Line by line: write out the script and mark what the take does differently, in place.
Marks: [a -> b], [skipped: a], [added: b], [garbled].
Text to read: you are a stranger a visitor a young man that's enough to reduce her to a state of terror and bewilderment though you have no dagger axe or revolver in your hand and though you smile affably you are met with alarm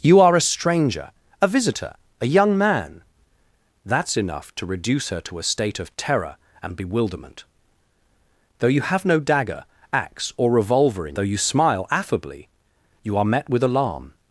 you are a stranger a visitor a young man that's enough to reduce her to a state of terror and bewilderment though you have no dagger axe or revolver in [skipped: your hand and] though you smile affably you are met with alarm